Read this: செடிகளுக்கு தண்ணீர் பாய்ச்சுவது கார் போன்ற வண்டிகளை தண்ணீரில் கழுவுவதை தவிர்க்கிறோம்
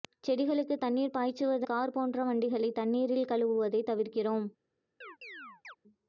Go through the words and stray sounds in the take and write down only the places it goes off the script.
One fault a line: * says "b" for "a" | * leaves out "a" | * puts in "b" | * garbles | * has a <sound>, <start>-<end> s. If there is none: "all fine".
* has a chirp, 5.0-5.8 s